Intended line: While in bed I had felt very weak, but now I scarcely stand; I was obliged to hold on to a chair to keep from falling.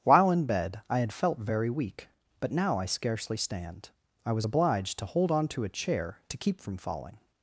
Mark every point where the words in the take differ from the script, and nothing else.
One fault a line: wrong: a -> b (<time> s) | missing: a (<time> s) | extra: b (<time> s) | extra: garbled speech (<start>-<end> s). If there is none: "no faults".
no faults